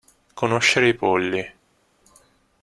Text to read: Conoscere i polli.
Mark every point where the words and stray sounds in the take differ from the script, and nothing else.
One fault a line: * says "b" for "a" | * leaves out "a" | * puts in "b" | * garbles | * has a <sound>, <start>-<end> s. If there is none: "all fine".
all fine